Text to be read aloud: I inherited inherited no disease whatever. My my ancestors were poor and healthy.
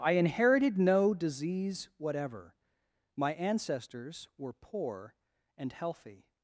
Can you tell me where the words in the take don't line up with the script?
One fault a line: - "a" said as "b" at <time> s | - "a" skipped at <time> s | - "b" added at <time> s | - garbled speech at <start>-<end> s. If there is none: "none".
- "inherited" skipped at 0.8 s
- "my" skipped at 3.4 s